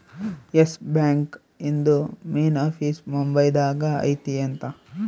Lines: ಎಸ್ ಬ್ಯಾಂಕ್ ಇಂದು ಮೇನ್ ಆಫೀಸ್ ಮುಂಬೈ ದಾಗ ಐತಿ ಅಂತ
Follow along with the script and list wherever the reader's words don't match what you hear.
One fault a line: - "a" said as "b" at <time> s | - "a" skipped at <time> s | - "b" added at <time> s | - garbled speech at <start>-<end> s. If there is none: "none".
none